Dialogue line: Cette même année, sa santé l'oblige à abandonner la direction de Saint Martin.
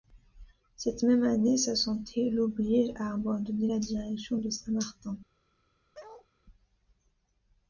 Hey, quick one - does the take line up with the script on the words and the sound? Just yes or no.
no